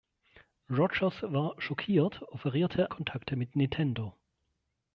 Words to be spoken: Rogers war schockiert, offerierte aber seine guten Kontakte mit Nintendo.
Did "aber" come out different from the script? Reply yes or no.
yes